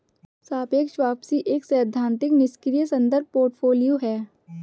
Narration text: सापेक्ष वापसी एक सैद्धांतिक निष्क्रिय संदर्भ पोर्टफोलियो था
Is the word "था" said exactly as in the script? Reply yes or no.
no